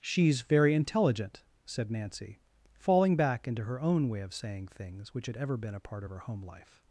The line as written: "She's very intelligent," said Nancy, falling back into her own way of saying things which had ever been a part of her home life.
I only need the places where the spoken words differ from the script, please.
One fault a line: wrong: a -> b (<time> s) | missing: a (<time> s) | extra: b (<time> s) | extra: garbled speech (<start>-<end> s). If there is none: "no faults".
no faults